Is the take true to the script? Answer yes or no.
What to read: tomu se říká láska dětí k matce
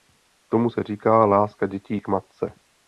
yes